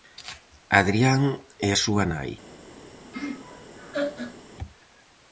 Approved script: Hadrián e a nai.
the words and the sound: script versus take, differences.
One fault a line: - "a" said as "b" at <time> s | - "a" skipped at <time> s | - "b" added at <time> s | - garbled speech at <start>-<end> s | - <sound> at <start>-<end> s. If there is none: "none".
- "súa" added at 1.8 s
- laugh at 3.1-4.4 s